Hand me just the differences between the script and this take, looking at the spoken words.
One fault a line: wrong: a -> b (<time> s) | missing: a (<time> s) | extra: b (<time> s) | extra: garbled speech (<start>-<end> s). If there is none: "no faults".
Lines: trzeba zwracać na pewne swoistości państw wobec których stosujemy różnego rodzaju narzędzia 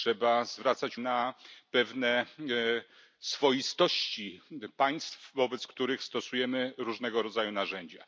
no faults